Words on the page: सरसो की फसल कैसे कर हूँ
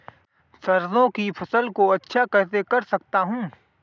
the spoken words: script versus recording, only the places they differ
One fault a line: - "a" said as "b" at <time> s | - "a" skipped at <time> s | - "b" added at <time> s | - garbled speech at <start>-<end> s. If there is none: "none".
- "को अच्छा" added at 1.7 s
- "सकता" added at 2.8 s